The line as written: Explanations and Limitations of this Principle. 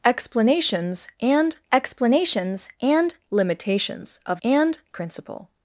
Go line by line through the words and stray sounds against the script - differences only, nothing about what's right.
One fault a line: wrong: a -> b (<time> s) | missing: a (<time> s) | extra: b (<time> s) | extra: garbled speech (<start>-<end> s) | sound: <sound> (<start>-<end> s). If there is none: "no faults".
extra: explanations and (1.7 s)
wrong: this -> and (4.4 s)